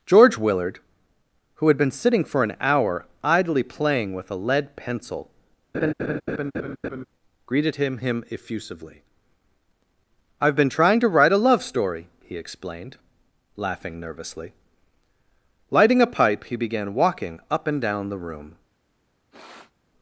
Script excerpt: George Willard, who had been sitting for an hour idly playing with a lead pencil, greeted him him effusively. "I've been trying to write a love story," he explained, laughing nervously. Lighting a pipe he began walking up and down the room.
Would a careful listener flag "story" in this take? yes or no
no